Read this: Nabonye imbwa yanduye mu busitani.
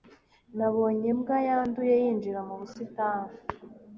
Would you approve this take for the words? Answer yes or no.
no